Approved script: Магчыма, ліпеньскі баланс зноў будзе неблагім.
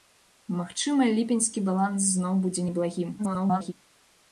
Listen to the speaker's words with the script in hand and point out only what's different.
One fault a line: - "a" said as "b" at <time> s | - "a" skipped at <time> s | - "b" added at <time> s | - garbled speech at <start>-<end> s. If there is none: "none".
- garbled speech at 3.2-3.7 s